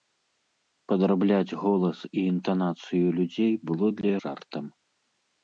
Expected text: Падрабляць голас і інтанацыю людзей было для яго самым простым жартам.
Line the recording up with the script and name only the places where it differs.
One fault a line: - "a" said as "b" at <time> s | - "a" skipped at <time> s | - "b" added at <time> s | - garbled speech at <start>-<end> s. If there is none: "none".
- "яго самым простым" skipped at 4.1 s